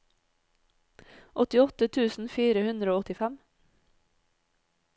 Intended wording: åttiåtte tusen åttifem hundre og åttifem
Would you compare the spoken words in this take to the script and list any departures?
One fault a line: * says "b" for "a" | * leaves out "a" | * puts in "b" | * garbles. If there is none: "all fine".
* says "fire" for "åttifem"